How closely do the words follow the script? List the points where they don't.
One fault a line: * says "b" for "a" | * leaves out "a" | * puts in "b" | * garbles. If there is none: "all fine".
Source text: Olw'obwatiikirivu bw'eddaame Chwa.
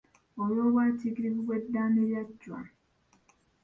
* puts in "lya"